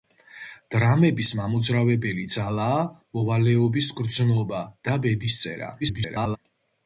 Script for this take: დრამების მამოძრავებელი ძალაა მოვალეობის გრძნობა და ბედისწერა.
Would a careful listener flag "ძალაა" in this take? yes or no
no